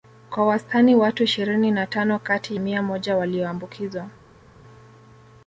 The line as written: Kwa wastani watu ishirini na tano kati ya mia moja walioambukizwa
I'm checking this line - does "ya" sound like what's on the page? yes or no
no